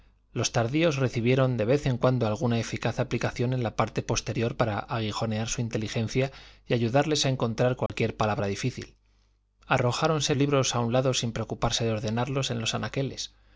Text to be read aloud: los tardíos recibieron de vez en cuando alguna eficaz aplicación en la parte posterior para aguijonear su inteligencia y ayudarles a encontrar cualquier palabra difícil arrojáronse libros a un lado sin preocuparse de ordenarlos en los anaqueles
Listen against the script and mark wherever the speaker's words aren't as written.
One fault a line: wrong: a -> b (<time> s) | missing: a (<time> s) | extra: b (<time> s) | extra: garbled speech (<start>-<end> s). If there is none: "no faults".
no faults